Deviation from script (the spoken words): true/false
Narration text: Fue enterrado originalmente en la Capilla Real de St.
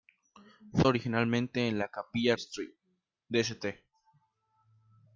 true